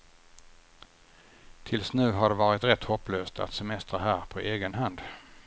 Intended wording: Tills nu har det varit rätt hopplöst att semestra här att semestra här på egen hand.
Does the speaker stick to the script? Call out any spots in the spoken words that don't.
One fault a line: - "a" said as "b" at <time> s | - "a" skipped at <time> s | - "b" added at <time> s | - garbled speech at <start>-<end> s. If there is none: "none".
- "att semestra här" skipped at 4.2 s